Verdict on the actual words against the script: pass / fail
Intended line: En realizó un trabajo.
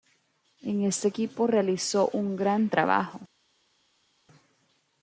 fail